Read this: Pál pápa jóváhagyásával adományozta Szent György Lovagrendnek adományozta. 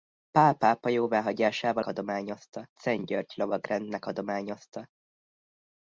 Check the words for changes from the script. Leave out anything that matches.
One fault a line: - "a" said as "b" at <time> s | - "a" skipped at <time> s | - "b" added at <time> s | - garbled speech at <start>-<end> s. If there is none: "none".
none